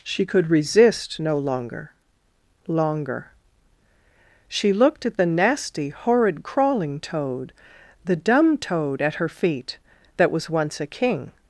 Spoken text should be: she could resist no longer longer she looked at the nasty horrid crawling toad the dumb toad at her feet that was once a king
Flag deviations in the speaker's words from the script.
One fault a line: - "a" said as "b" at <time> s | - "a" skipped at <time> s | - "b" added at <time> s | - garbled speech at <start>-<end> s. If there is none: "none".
none